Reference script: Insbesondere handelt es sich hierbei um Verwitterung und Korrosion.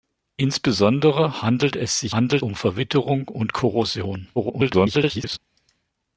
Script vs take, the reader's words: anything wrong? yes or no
yes